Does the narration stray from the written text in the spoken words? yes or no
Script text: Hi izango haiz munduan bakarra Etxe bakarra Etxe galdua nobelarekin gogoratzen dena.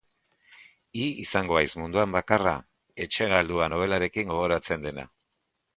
yes